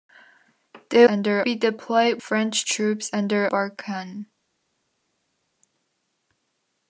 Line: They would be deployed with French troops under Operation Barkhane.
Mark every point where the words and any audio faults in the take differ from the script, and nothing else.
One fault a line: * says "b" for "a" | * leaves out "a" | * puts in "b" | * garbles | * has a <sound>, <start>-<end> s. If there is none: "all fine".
* says "under" for "would"
* leaves out "with"
* leaves out "Operation"